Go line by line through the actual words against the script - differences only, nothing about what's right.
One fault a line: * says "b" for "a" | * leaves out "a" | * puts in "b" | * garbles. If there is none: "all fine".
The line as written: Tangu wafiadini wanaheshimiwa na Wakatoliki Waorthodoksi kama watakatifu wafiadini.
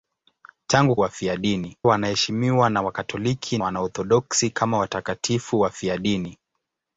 all fine